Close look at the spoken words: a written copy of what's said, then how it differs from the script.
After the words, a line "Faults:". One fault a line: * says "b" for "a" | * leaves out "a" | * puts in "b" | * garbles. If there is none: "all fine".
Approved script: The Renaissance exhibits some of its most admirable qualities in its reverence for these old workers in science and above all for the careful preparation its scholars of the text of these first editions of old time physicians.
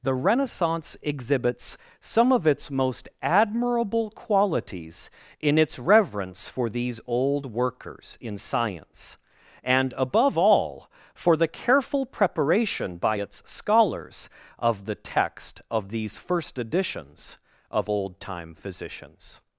The Renaissance exhibits some of its most admirable qualities in its reverence for these old workers in science and above all for the careful preparation by its scholars of the text of these first editions of old time physicians.
Faults:
* puts in "by"